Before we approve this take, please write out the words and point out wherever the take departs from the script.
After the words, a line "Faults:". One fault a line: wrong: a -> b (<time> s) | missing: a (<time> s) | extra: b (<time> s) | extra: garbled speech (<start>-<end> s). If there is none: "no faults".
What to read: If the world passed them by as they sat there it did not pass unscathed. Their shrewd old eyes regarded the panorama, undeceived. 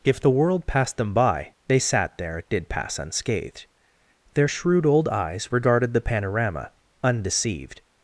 If the world passed them by they sat there it did pass unscathed. Their shrewd old eyes regarded the panorama, undeceived.
Faults:
missing: as (1.5 s)
missing: not (2.7 s)